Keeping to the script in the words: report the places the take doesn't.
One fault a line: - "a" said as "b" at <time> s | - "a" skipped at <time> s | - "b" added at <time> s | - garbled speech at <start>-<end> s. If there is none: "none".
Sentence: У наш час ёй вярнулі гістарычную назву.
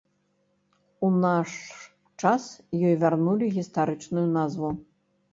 none